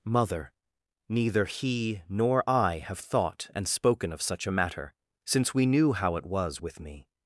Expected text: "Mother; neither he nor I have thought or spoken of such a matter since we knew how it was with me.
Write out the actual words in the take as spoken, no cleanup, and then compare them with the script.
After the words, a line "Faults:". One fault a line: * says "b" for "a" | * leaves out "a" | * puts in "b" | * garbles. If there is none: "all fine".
"Mother; neither he nor I have thought and spoken of such a matter since we knew how it was with me.
Faults:
* says "and" for "or"